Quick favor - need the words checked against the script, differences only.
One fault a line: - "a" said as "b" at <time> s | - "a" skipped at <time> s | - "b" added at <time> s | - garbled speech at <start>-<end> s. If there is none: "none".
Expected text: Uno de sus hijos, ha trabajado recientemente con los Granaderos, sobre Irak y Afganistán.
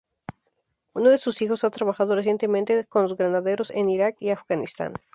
- "sobre" said as "en" at 3.7 s